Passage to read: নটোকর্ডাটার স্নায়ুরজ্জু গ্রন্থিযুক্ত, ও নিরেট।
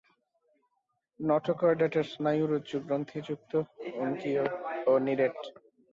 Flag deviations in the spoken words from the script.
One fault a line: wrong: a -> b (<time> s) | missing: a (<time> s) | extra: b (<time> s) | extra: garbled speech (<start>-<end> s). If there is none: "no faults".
extra: অঙ্কীয় (4.0 s)